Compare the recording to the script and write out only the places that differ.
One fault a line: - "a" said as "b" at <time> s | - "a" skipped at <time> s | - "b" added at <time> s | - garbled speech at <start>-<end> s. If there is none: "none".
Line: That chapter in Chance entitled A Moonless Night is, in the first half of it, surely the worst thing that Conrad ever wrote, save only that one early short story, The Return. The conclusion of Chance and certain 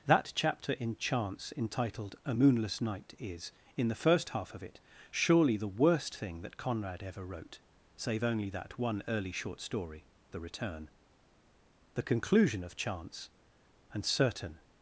none